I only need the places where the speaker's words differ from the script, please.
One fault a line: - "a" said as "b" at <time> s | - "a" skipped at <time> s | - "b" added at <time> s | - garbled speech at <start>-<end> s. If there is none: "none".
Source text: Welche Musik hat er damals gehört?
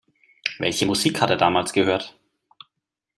none